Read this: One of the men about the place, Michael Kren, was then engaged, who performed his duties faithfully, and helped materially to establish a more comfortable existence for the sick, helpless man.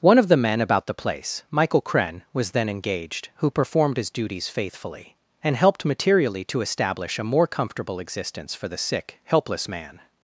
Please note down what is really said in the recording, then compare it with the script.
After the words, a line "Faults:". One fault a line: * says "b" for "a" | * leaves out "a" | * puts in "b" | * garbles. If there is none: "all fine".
One of the men about the place, Michael Kren, was then engaged, who performed his duties faithfully, and helped materially to establish a more comfortable existence for the sick, helpless man.
Faults:
all fine